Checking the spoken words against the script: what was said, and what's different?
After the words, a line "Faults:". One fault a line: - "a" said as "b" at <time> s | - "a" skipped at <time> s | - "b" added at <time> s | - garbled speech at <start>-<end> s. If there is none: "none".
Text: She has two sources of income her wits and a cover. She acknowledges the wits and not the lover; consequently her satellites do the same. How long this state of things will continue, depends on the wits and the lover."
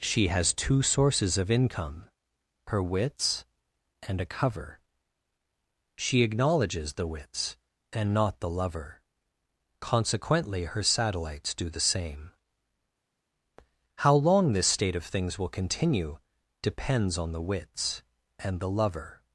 She has two sources of income her wits and a cover. She acknowledges the wits and not the lover; consequently her satellites do the same. How long this state of things will continue, depends on the wits and the lover."
Faults:
none